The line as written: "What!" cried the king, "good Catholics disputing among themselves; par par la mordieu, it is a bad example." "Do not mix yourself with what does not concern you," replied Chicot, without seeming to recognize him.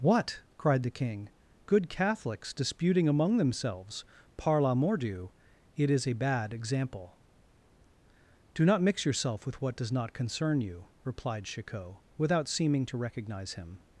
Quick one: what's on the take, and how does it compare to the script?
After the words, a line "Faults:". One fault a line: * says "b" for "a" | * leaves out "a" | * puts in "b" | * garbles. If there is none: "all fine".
"What!" cried the king, "good Catholics disputing among themselves; par la mordieu, it is a bad example." "Do not mix yourself with what does not concern you," replied Chicot, without seeming to recognize him.
Faults:
* leaves out "par"